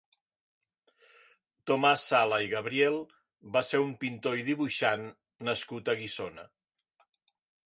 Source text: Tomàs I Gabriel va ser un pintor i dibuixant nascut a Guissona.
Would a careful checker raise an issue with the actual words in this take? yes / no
yes